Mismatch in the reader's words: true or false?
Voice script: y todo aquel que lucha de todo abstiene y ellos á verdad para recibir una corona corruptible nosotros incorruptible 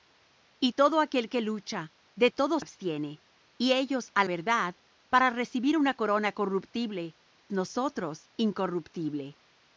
false